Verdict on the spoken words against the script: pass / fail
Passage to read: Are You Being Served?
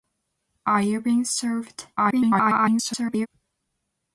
fail